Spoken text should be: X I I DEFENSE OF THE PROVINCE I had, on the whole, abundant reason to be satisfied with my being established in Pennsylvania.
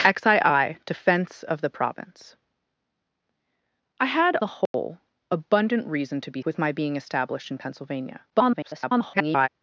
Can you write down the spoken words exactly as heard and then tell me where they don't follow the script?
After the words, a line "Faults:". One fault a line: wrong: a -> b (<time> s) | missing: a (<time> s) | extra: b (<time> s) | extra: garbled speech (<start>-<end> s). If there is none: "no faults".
X I I DEFENSE OF THE PROVINCE I had, the whole, abundant reason to be with my being established in Pennsylvania. [garbled]
Faults:
missing: on (4.3 s)
missing: satisfied (6.4 s)
extra: garbled speech (8.3-9.5 s)